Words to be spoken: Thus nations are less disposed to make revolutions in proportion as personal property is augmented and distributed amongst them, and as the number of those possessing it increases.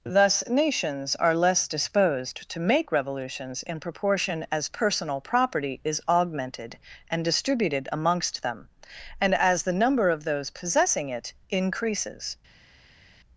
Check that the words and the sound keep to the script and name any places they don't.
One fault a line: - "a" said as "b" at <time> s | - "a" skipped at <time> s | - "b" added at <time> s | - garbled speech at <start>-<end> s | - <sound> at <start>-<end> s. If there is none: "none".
none